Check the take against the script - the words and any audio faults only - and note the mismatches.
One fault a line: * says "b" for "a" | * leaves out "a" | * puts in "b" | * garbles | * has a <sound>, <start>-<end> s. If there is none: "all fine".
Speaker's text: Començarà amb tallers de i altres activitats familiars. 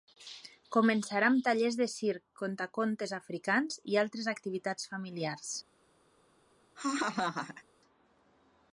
* puts in "circ contacontes africans"
* has a laugh, 6.8-7.6 s